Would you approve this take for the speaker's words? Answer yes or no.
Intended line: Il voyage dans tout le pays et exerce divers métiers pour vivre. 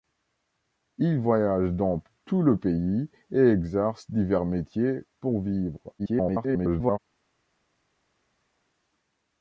no